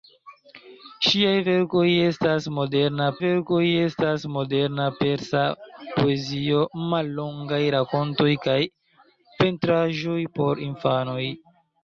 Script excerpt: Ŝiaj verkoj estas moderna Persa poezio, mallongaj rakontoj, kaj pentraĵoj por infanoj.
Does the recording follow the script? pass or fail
fail